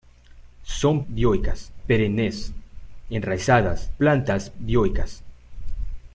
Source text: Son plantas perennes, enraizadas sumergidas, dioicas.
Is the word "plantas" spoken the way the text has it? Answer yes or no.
no